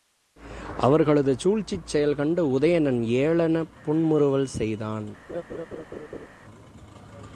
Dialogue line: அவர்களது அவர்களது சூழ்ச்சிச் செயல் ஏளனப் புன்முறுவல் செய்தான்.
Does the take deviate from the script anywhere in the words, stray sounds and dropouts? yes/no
yes